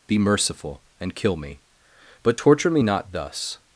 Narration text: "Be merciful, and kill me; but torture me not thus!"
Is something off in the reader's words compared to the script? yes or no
no